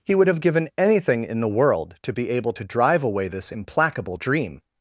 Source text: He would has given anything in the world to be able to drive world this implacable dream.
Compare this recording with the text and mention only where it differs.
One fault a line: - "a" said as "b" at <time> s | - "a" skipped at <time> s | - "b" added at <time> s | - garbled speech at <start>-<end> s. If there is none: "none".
- "has" said as "have" at 0.3 s
- "world" said as "away" at 3.0 s